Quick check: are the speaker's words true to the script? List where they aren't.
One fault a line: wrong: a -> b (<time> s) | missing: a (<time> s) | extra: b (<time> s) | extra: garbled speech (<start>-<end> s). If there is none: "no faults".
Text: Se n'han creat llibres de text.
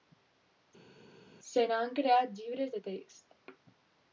no faults